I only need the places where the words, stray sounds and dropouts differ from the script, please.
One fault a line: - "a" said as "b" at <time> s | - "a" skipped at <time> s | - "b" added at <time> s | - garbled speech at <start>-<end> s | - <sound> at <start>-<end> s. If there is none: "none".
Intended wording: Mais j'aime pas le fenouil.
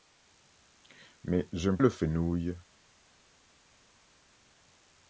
- "pas" skipped at 1.8 s